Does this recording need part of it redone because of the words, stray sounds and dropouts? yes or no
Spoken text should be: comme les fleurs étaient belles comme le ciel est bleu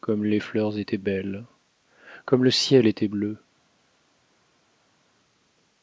yes